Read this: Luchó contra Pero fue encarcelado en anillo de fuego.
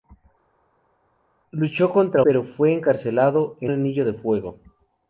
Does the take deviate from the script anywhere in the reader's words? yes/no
no